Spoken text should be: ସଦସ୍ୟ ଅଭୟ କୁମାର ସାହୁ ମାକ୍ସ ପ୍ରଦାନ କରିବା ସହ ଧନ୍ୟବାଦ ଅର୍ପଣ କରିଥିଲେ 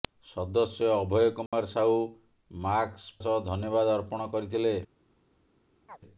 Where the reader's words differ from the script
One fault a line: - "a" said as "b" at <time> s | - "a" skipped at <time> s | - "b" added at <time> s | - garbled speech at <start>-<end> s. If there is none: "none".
- "ପ୍ରଦାନ କରିବା" skipped at 3.2 s